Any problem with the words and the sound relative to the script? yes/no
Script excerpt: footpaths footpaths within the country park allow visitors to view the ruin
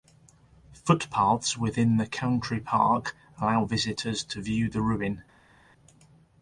yes